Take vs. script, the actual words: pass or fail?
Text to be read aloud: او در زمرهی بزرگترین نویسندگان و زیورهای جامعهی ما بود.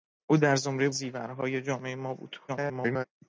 fail